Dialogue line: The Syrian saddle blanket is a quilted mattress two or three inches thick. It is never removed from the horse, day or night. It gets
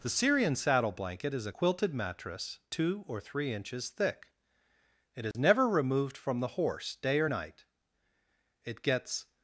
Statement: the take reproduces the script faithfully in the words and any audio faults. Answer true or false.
false